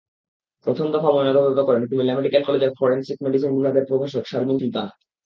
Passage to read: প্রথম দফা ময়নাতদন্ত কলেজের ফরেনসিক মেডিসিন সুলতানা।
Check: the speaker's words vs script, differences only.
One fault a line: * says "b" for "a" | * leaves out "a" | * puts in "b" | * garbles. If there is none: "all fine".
* puts in "করেন কুমিল্লা মেডিকেল"
* puts in "বিভাগের প্রভাষক শারমিন"